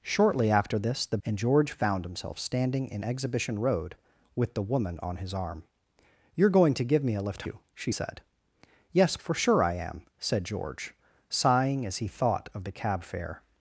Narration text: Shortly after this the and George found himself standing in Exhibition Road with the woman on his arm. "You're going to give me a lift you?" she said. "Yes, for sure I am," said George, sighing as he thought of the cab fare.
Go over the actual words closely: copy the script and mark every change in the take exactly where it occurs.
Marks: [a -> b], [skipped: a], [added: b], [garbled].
Shortly after this the and George found himself standing in Exhibition Road with the woman on his arm. "You're going to give me a lift you?" she said. "Yes, for sure I am," said George, sighing as he thought of the cab fare.